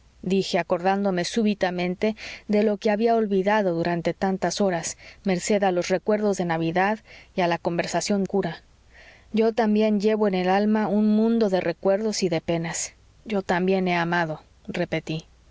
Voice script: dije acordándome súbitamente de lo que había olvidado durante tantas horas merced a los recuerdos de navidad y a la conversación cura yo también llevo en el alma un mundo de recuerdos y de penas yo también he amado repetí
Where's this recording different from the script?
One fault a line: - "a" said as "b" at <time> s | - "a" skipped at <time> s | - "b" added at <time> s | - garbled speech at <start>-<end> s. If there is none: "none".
none